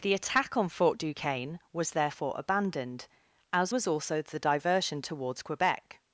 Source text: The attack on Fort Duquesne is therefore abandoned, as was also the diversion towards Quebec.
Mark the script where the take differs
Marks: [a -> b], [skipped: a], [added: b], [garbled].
The attack on Fort Duquesne [is -> was] therefore abandoned, as was also the diversion towards Quebec.